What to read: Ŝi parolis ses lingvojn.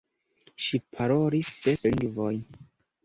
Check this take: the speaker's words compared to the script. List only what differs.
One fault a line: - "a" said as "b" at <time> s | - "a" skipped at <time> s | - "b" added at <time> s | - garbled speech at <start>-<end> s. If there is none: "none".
none